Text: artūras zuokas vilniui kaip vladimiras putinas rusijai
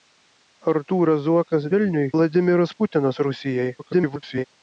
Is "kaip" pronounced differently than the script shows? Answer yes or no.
yes